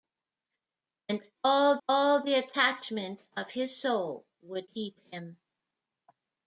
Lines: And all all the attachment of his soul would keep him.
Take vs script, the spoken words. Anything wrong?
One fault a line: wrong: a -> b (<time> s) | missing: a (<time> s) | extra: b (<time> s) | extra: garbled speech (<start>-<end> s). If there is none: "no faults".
no faults